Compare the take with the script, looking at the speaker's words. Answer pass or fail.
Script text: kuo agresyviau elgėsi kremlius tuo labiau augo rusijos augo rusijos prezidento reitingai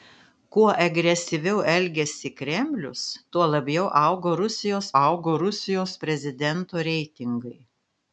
pass